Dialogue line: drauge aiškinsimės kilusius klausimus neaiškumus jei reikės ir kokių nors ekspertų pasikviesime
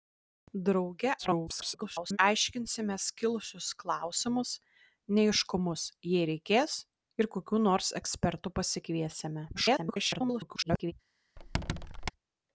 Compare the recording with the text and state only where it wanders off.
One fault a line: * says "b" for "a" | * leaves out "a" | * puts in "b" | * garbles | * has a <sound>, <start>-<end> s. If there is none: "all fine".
* garbles
* garbles
* has a squeak, 11.4-12.1 s